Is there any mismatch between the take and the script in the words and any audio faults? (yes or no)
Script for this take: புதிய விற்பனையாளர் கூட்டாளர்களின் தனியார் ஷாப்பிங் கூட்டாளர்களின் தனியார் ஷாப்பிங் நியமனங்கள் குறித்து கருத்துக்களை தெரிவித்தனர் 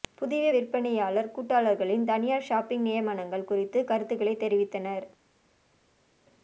yes